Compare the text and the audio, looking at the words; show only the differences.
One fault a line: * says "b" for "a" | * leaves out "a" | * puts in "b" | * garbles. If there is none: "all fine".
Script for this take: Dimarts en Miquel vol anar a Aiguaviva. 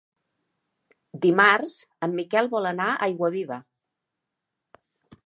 all fine